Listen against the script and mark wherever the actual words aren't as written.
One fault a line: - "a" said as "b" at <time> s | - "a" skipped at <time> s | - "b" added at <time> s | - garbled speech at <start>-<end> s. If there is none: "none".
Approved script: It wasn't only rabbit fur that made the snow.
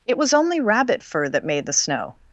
- "wasn't" said as "was" at 0.2 s